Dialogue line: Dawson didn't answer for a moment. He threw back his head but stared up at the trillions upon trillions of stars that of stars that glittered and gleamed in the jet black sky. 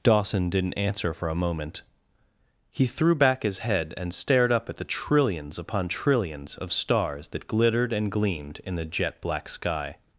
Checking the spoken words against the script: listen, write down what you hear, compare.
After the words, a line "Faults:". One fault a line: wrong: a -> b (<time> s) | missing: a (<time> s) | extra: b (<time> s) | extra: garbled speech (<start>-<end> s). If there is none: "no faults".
Dawson didn't answer for a moment. He threw back his head and stared up at the trillions upon trillions of stars that glittered and gleamed in the jet black sky.
Faults:
wrong: but -> and (4.0 s)
missing: of stars that (7.5 s)